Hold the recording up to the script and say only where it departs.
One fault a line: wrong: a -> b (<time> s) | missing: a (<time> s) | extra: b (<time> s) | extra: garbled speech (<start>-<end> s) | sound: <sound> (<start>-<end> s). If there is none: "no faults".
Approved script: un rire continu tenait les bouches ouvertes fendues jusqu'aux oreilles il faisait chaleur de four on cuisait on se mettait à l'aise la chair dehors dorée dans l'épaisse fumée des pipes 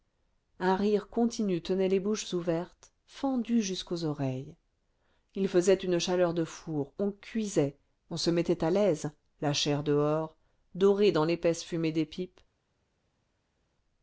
extra: une (5.8 s)